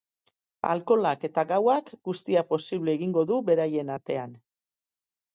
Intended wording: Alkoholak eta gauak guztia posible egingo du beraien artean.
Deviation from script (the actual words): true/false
false